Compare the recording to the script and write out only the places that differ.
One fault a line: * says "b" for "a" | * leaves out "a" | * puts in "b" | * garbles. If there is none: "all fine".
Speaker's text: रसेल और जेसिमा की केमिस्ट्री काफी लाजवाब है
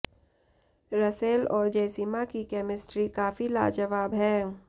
all fine